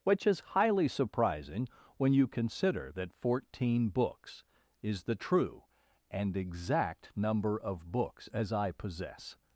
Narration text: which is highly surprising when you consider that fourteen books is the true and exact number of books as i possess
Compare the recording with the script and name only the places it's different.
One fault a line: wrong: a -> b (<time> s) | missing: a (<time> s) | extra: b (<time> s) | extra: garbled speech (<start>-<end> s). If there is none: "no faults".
no faults